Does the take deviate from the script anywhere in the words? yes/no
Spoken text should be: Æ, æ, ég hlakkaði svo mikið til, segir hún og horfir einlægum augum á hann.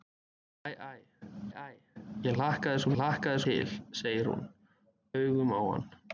yes